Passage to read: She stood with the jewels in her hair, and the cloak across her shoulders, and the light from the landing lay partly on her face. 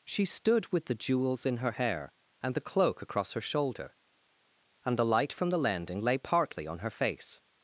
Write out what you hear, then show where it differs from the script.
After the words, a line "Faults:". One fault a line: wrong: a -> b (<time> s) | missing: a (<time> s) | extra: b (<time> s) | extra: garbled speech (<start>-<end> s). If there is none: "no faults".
She stood with the jewels in her hair, and the cloak across her shoulder, and the light from the landing lay partly on her face.
Faults:
wrong: shoulders -> shoulder (3.4 s)